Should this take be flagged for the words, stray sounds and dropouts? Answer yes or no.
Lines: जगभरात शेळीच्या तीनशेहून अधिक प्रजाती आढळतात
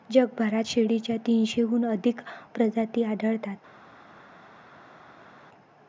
no